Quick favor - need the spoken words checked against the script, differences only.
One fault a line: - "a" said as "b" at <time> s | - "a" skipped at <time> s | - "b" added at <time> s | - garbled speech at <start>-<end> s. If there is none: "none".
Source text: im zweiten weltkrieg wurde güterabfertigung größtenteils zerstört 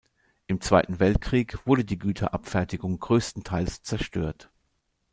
- "die" added at 1.9 s